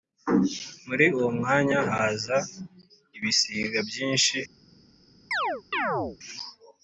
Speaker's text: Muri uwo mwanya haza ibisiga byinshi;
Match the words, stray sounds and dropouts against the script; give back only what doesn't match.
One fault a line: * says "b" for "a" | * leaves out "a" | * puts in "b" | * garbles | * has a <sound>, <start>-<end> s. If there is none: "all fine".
* has a chirp, 5.3-6.2 s